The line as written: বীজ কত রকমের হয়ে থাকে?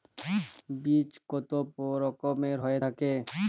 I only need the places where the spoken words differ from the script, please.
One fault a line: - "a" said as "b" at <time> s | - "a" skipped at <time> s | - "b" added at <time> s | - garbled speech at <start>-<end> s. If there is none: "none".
none